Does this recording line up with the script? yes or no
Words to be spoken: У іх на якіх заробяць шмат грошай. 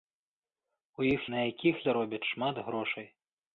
yes